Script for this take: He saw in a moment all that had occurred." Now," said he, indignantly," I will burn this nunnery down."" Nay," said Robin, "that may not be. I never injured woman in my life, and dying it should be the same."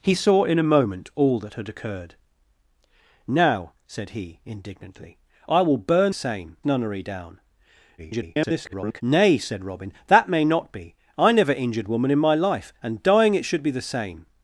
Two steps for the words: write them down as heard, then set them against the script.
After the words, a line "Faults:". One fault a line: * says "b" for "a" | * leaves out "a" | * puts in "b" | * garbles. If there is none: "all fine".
He saw in a moment all that had occurred." Now," said he, indignantly," I will burn same nunnery down."" [garbled] Nay," said Robin, "that may not be. I never injured woman in my life, and dying it should be the same."
Faults:
* says "same" for "this"
* garbles